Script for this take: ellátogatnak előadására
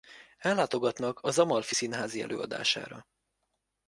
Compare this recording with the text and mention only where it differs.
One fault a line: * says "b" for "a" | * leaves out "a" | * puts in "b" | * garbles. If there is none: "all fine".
* puts in "az amalfi színházi"